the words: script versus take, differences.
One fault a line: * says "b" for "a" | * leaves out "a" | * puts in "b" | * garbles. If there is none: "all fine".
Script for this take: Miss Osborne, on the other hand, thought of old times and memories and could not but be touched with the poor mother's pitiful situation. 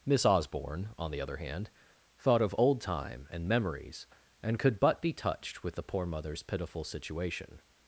* says "time" for "times"
* leaves out "not"